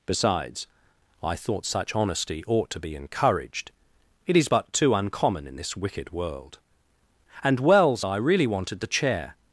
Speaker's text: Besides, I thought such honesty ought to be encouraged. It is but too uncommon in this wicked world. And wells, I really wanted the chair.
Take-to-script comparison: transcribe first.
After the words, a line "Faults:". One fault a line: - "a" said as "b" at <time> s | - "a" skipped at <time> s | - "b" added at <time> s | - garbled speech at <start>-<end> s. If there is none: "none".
Besides, I thought such honesty ought to be encouraged. It is but too uncommon in this wicked world. And wells, I really wanted the chair.
Faults:
none